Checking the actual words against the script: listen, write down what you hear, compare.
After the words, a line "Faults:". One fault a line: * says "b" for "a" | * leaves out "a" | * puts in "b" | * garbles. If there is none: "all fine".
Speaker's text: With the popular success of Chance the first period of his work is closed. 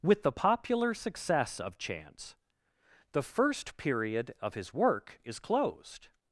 With the popular success of Chance the first period of his work is closed.
Faults:
all fine